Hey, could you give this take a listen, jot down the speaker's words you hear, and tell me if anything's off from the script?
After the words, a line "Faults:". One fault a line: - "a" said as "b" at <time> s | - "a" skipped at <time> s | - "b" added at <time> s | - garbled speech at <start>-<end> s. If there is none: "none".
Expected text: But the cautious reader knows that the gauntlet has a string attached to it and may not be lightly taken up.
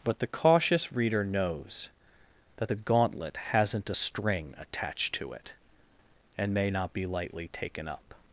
But the cautious reader knows that the gauntlet hasn't a string attached to it and may not be lightly taken up.
Faults:
- "has" said as "hasn't" at 3.5 s